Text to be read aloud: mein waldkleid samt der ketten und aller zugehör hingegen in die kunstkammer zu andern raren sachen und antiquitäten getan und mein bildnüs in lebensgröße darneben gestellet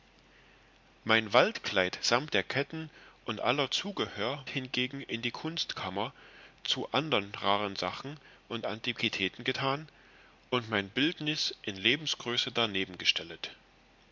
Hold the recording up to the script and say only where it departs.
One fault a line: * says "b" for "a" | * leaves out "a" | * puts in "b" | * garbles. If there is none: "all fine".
all fine